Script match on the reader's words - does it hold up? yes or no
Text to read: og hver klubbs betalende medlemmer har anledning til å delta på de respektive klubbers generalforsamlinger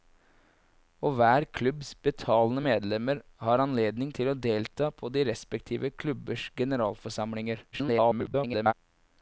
no